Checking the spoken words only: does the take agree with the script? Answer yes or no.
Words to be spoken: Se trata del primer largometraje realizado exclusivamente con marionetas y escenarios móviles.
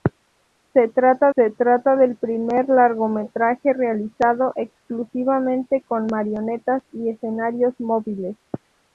no